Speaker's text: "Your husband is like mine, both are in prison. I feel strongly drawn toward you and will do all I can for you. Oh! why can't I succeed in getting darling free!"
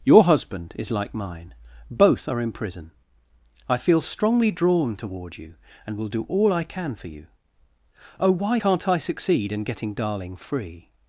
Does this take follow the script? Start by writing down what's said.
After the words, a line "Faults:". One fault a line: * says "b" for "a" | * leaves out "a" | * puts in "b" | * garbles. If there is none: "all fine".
"Your husband is like mine, both are in prison. I feel strongly drawn toward you and will do all I can for you. Oh! why can't I succeed in getting darling free!"
Faults:
all fine